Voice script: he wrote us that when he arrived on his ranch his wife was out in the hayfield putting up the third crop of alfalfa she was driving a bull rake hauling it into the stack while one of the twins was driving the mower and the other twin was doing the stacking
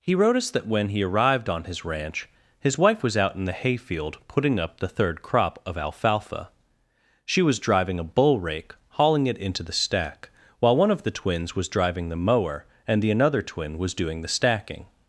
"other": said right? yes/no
no